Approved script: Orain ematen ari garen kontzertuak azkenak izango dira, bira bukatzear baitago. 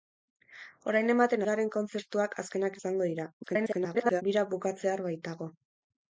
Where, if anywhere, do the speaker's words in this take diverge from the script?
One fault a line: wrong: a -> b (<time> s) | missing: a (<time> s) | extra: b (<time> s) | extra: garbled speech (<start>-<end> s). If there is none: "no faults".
missing: ari (1.4 s)
extra: garbled speech (3.4-4.2 s)